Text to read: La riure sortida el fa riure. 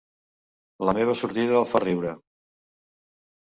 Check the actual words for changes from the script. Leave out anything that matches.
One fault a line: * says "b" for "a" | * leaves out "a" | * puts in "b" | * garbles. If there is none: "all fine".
* says "meva" for "riure"